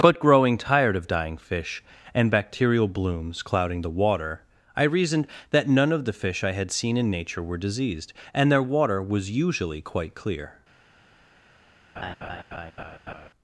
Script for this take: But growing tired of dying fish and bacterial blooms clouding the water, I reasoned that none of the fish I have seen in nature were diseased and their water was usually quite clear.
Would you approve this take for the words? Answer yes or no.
no